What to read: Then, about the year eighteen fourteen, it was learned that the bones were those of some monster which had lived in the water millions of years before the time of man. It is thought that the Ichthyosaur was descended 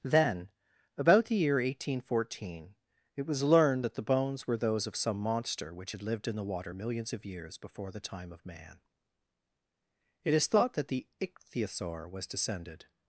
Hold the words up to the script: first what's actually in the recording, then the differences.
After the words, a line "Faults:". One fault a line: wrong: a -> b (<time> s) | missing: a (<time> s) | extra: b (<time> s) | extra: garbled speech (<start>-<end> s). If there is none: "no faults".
Then, about the year eighteen fourteen, it was learned that the bones were those of some monster which had lived in the water millions of years before the time of man. It is thought that the Ichthyosaur was descended
Faults:
no faults